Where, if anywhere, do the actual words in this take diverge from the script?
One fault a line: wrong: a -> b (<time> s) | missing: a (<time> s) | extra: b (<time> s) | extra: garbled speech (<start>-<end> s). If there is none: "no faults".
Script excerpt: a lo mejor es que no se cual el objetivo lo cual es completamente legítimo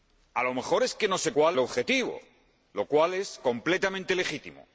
no faults